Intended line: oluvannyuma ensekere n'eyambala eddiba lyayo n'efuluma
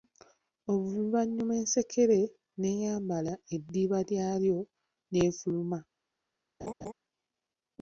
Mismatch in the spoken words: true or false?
false